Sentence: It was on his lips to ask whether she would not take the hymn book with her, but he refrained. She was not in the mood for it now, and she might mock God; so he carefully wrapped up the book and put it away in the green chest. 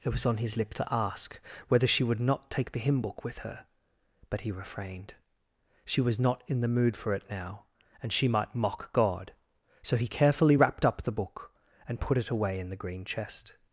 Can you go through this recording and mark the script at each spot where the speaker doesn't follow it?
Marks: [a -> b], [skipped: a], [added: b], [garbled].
It was on his [lips -> lip] to ask whether she would not take the hymn book with her, but he refrained. She was not in the mood for it now, and she might mock God; so he carefully wrapped up the book and put it away in the green chest.